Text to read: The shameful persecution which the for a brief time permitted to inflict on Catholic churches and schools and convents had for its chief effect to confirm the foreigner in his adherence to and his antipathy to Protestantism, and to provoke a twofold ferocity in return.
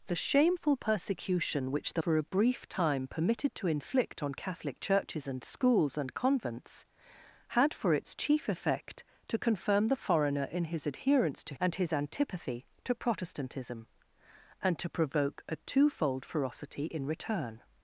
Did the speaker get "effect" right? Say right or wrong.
right